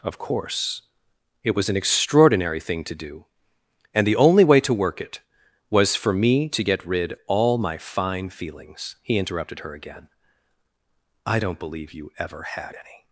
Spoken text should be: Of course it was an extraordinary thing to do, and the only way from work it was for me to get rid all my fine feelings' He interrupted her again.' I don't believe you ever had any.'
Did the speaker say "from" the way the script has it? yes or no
no